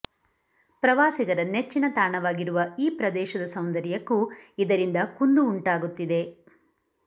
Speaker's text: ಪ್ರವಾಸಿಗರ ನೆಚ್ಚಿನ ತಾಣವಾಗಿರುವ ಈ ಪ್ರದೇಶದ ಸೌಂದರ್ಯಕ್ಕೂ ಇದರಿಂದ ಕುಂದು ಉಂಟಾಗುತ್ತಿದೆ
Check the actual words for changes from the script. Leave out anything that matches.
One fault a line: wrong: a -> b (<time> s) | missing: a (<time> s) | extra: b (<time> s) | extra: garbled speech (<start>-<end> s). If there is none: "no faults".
no faults